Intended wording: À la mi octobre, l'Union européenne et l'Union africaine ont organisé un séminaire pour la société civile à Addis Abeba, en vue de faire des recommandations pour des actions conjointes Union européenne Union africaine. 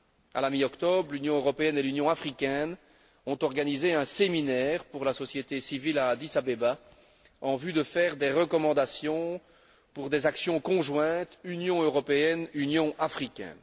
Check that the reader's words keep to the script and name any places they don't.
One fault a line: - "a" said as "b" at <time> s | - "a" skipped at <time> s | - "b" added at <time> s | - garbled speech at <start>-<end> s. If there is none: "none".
none